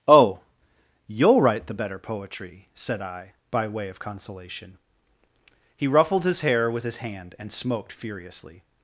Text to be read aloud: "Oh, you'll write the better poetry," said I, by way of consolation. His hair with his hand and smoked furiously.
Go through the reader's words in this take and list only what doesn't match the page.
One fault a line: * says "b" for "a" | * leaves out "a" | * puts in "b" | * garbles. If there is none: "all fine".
* puts in "He ruffled"